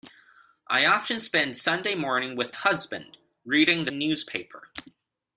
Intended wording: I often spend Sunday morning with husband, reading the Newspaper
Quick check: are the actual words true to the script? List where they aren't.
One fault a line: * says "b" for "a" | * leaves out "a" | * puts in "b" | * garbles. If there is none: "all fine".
all fine